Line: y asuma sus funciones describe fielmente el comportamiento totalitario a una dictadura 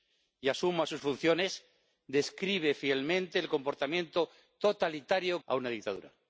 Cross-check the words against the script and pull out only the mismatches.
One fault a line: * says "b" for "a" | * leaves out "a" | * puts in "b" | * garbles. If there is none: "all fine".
all fine